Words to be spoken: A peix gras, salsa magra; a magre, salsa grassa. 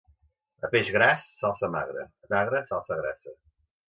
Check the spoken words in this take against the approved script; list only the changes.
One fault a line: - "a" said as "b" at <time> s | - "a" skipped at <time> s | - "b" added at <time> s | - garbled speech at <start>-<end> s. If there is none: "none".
none